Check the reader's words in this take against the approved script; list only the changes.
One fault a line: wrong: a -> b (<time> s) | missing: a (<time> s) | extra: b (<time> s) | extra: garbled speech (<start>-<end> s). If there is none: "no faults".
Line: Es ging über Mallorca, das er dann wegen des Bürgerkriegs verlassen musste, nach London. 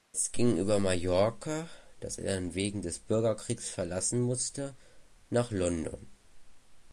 no faults